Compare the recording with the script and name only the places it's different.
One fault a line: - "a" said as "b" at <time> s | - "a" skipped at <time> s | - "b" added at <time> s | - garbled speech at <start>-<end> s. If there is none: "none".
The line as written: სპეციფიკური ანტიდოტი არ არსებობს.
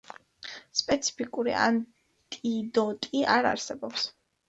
none